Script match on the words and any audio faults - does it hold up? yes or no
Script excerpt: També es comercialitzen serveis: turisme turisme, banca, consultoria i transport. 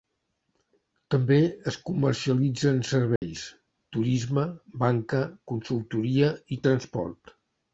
no